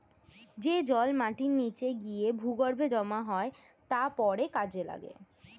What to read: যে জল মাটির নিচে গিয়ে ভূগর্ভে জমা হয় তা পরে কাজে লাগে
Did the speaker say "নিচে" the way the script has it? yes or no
yes